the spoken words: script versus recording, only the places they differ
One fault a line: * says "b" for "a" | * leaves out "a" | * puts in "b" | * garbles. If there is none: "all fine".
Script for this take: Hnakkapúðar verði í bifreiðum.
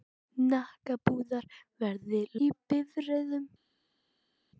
all fine